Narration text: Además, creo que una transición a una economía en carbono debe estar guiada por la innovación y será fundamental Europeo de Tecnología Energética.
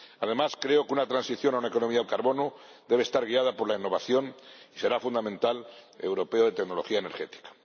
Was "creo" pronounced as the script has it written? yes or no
yes